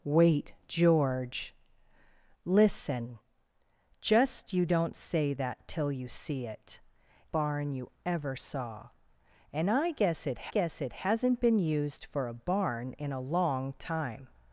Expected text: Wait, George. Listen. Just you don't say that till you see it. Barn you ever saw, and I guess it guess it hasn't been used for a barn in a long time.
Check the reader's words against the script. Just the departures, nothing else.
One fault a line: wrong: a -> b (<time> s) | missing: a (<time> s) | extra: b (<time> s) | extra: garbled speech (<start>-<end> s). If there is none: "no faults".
no faults